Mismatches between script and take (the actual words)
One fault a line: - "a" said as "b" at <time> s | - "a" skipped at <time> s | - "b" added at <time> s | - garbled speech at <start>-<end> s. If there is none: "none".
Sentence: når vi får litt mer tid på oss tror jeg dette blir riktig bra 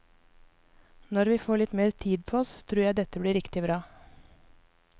none